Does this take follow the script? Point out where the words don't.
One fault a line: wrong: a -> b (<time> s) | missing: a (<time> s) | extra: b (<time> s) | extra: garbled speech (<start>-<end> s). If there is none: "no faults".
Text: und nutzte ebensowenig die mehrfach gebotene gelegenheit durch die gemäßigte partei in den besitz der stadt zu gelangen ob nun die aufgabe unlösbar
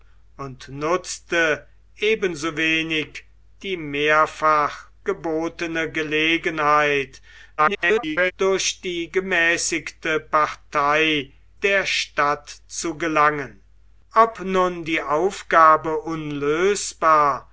extra: garbled speech (7.6-8.3 s)
missing: in den besitz (11.3 s)